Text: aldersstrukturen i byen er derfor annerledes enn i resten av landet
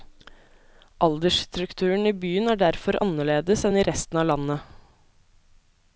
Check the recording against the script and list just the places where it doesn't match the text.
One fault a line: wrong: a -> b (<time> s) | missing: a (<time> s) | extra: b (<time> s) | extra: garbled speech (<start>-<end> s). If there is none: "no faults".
no faults